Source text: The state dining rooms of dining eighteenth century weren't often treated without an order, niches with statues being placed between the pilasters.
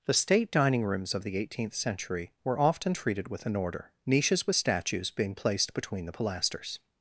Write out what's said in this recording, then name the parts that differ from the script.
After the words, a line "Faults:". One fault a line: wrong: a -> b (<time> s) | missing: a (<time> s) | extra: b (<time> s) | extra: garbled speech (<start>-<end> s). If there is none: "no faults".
The state dining rooms of the eighteenth century were often treated with an order, niches with statues being placed between the pilasters.
Faults:
wrong: dining -> the (1.2 s)
wrong: weren't -> were (2.4 s)
wrong: without -> with (3.3 s)